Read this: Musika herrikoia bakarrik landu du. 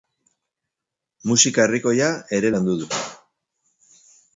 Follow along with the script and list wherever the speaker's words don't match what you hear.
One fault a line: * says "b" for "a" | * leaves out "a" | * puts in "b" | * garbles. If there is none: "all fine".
* says "ere" for "bakarrik"